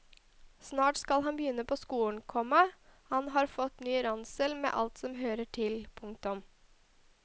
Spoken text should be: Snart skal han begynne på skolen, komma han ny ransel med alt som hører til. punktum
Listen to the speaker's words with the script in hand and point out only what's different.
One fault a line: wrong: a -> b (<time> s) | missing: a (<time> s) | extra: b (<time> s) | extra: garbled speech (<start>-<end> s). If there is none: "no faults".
extra: har fått (3.4 s)